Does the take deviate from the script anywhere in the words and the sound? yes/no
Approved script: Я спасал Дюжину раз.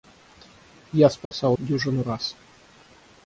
yes